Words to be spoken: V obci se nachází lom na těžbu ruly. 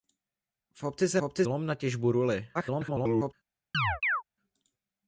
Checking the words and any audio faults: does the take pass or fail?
fail